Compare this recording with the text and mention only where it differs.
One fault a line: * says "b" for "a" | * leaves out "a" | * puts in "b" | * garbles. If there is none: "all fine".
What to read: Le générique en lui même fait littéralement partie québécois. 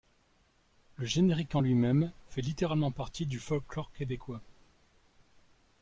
* puts in "du folklore"